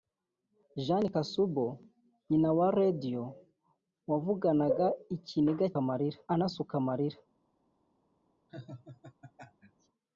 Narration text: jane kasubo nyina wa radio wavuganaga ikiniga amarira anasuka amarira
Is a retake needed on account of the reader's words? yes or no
no